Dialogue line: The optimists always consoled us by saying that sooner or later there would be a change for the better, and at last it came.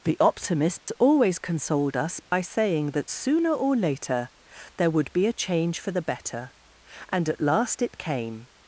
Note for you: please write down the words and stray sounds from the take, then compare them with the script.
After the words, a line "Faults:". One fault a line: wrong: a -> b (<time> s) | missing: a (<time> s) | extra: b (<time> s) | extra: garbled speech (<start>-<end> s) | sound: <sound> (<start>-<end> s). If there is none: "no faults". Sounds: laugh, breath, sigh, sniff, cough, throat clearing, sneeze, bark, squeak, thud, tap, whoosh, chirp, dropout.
The optimists always consoled us by saying that sooner or later there would be a change for the better, and at last it came.
Faults:
sound: dropout (0.8-0.9 s)
sound: dropout (2.3-2.3 s)